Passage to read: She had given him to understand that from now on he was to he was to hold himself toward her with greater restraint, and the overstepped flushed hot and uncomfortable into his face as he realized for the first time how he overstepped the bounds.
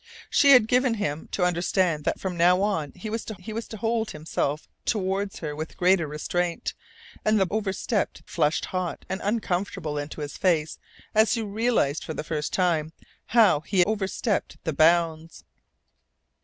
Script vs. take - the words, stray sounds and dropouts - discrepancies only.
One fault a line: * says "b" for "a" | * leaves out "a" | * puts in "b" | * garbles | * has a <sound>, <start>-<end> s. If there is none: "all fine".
all fine